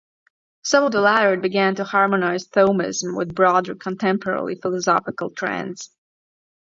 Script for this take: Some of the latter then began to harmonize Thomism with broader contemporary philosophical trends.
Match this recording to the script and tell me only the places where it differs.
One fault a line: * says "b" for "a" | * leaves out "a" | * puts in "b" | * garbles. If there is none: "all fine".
* leaves out "then"